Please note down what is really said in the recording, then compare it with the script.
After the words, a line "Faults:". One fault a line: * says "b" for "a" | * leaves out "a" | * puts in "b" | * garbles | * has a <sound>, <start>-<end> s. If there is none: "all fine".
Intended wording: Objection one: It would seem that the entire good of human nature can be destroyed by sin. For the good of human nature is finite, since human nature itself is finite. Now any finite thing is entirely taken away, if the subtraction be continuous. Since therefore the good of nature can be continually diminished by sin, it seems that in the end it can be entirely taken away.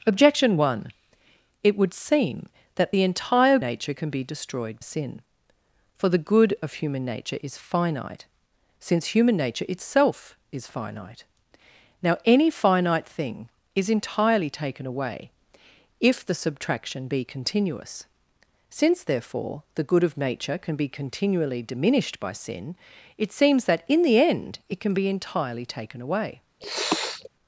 Objection one: It would seem that the entire nature can be destroyed sin. For the good of human nature is finite, since human nature itself is finite. Now any finite thing is entirely taken away, if the subtraction be continuous. Since therefore the good of nature can be continually diminished by sin, it seems that in the end it can be entirely taken away.
Faults:
* leaves out "good of human"
* leaves out "by"
* has a sniff, 26.6-27.3 s